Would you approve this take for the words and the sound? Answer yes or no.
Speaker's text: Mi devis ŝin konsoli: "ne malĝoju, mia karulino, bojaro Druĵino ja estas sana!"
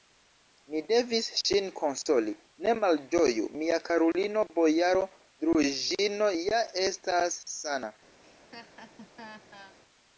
no